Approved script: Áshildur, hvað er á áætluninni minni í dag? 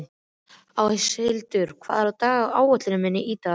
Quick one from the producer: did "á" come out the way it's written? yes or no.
yes